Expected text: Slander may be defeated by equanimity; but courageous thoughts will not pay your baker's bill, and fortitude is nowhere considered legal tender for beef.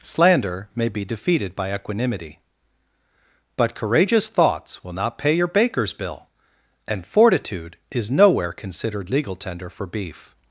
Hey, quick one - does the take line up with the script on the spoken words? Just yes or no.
yes